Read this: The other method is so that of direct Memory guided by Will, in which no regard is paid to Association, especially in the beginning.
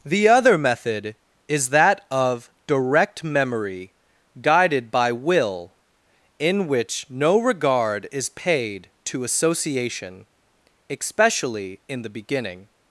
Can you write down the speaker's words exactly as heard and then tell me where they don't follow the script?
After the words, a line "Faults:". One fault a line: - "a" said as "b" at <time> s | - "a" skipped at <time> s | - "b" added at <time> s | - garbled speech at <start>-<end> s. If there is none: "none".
The other method is that of direct Memory guided by Will, in which no regard is paid to Association, especially in the beginning.
Faults:
- "so" skipped at 1.7 s